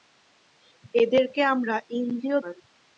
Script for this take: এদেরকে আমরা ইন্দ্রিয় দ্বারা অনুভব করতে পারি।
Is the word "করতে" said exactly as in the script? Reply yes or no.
no